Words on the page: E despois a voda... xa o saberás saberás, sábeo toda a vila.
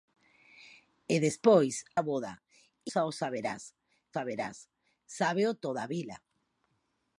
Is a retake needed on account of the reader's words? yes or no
no